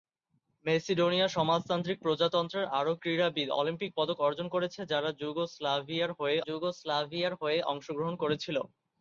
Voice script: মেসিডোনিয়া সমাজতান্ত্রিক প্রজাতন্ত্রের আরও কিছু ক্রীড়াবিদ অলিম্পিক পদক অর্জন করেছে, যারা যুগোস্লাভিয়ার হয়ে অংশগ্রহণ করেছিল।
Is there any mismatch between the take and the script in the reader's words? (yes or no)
yes